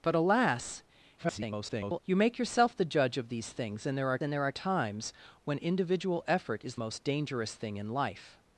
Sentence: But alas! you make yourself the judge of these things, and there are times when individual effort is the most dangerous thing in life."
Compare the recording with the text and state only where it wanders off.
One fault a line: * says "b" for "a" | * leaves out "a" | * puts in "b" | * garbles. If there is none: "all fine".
* garbles
* puts in "and there are"
* leaves out "the"